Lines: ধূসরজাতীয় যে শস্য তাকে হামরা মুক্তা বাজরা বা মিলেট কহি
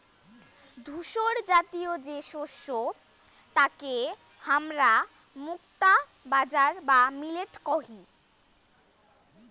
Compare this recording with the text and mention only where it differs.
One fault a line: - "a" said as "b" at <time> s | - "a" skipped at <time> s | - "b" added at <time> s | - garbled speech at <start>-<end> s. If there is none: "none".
none